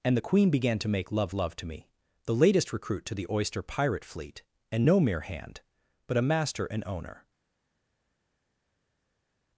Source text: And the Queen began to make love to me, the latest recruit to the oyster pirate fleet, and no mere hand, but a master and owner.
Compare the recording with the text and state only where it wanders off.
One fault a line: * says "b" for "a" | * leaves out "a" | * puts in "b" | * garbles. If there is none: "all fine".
* puts in "love"